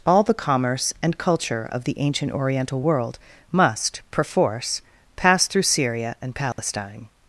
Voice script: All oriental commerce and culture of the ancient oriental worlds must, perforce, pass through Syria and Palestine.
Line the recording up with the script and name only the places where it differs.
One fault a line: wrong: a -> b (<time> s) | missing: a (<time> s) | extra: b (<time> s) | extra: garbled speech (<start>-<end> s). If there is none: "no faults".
wrong: oriental -> the (0.2 s)
wrong: worlds -> world (2.8 s)